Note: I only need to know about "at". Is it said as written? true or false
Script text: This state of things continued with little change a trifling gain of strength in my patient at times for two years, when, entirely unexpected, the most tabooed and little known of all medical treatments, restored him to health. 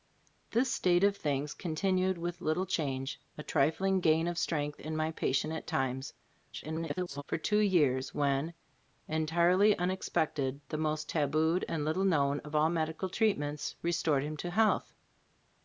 true